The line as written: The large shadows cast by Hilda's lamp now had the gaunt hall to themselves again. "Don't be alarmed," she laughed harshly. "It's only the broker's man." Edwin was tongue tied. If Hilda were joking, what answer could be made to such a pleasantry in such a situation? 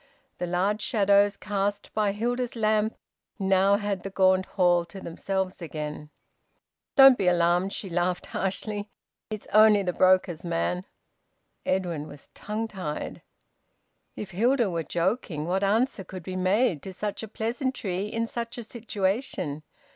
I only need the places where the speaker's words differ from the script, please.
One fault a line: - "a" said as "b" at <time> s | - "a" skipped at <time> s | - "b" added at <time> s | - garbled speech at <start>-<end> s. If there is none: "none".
none